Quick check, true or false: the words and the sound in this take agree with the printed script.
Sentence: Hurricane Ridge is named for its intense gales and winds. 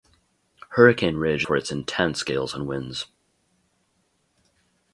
false